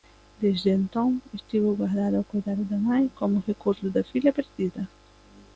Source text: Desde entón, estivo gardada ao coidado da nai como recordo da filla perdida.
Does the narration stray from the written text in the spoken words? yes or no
no